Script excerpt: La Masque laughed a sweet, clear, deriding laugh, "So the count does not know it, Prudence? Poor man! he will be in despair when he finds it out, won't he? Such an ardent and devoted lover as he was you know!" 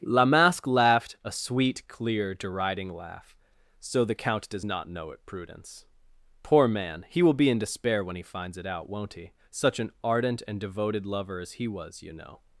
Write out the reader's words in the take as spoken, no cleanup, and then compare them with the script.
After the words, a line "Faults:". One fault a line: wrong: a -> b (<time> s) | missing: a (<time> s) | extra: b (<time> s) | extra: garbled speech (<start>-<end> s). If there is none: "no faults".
La Masque laughed a sweet, clear, deriding laugh, "So the count does not know it, Prudence? Poor man! he will be in despair when he finds it out, won't he? Such an ardent and devoted lover as he was you know!"
Faults:
no faults